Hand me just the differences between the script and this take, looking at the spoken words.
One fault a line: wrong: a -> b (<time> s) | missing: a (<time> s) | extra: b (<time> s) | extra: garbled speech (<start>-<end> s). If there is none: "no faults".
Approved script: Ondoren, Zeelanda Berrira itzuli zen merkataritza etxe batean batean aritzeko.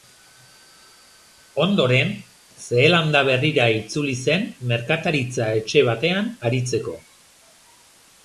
missing: batean (6.3 s)